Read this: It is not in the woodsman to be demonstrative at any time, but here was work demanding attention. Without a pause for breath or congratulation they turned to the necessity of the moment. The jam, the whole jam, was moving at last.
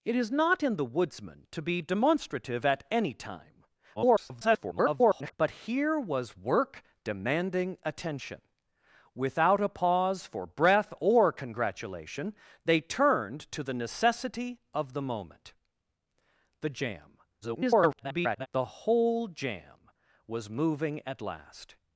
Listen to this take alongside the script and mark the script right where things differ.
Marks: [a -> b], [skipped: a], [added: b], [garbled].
It is not in the woodsman to be demonstrative at any time, [garbled] but here was work demanding attention. Without a pause for breath or congratulation they turned to the necessity of the moment. The jam, [garbled] the whole jam, was moving at last.